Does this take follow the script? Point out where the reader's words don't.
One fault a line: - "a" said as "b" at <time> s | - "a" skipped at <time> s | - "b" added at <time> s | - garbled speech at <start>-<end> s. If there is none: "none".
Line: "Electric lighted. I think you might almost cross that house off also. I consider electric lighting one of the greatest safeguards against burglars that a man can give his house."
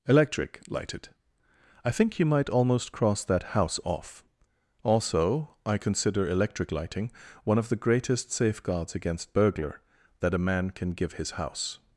- "burglars" said as "burglar" at 9.3 s